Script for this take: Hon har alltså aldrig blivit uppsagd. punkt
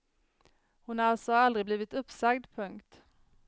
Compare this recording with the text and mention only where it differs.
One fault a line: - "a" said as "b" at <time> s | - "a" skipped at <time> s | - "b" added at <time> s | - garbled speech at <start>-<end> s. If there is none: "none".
none